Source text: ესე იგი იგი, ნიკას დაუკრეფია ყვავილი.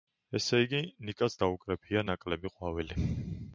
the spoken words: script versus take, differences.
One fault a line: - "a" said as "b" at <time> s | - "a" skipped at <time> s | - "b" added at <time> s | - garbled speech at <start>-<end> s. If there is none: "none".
- "იგი" skipped at 0.8 s
- "ნაკლები" added at 2.1 s